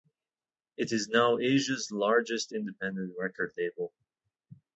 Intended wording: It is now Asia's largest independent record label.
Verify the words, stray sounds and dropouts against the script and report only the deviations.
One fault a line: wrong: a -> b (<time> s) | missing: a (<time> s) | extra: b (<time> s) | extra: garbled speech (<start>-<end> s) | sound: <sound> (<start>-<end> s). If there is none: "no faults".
no faults